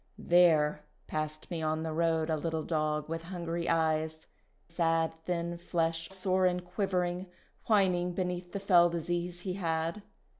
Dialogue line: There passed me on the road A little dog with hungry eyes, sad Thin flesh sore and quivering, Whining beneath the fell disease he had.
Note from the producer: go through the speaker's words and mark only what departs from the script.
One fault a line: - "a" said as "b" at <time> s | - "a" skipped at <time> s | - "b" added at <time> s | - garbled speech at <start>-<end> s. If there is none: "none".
none